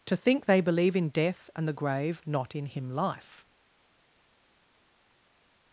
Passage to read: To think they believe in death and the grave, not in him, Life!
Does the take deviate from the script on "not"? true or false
false